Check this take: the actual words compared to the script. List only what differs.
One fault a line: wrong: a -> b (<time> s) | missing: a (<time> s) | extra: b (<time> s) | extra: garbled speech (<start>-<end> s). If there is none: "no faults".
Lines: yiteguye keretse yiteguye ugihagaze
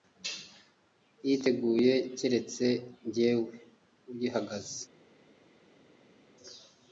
wrong: yiteguye -> jyewe (3.1 s)